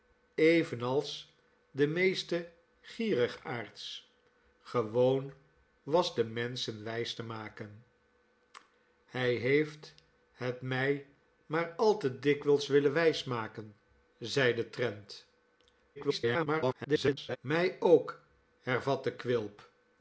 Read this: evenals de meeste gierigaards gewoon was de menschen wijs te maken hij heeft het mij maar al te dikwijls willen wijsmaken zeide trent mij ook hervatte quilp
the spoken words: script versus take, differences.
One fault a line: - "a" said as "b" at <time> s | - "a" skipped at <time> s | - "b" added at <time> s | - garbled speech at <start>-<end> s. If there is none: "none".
- garbled speech at 16.0-17.4 s